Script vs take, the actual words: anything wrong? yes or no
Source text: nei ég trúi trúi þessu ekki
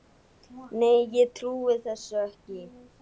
yes